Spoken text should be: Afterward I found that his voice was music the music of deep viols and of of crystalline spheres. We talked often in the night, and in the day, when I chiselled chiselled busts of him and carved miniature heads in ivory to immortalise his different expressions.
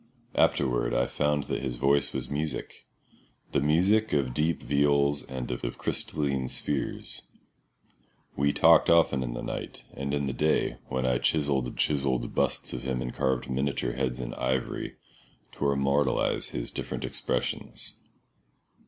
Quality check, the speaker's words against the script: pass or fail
pass